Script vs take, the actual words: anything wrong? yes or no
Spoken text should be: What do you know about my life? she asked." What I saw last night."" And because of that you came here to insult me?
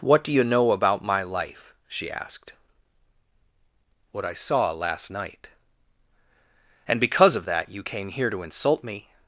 no